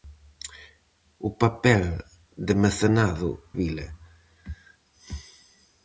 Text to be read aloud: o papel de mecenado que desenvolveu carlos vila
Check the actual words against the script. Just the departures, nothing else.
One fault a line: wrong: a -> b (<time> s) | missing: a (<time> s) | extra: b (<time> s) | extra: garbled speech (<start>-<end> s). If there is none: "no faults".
missing: que desenvolveu carlos (3.3 s)